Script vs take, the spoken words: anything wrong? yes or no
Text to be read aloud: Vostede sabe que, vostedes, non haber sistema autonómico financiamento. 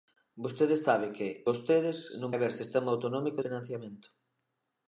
no